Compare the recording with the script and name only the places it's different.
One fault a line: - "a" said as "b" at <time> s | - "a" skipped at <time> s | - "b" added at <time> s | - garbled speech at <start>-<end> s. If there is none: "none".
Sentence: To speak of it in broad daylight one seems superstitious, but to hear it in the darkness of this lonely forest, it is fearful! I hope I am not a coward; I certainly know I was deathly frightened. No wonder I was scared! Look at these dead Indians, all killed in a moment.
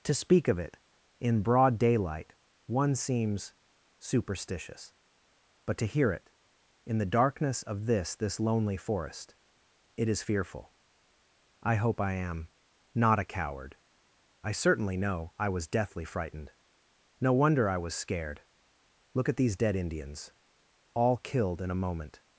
- "this" added at 8.2 s